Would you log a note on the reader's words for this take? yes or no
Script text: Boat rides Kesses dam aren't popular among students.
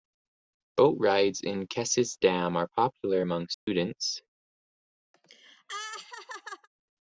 yes